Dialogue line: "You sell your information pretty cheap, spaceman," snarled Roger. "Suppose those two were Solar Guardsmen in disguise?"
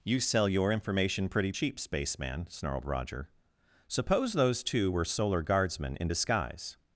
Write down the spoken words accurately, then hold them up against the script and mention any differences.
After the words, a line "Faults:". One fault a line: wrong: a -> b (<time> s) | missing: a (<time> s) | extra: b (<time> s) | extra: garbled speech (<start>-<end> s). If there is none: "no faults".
"You sell your information pretty cheap, spaceman," snarled Roger. "Suppose those two were Solar Guardsmen in disguise?"
Faults:
no faults